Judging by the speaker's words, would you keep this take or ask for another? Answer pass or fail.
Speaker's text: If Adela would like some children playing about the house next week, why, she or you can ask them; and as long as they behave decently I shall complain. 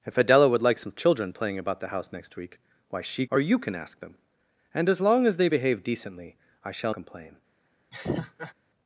pass